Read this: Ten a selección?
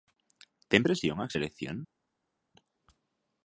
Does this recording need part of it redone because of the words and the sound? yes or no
yes